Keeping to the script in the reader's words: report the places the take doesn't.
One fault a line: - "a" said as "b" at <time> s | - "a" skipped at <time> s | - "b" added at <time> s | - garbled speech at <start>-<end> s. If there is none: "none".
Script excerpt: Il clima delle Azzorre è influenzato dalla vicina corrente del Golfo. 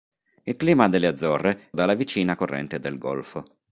- "è influenzato" skipped at 1.7 s